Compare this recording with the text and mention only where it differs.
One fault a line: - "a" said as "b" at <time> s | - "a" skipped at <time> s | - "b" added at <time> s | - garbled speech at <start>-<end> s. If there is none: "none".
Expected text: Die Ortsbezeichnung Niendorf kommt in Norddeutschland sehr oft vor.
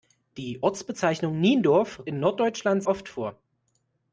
- "kommt" skipped at 2.0 s
- "sehr" skipped at 2.8 s